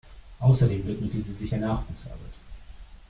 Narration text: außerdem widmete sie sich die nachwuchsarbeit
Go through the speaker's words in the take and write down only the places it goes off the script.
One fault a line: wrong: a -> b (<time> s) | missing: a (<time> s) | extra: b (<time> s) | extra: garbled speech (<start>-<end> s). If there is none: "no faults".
wrong: die -> der (1.5 s)